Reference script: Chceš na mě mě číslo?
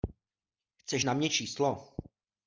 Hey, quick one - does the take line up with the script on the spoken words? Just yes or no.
no